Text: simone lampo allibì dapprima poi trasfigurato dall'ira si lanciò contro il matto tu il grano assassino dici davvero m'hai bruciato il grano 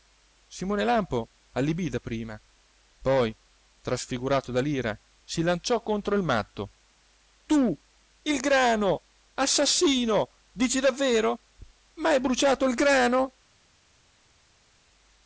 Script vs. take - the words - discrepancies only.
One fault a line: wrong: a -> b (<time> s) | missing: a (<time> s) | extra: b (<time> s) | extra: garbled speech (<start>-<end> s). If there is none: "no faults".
no faults